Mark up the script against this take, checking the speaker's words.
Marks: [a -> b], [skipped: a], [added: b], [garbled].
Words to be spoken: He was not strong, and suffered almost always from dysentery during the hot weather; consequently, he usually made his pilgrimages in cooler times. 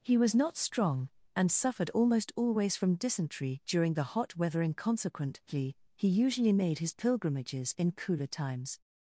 He was not strong, and suffered almost always from dysentery during the hot weather; [added: and] consequently, he usually made his pilgrimages in cooler times.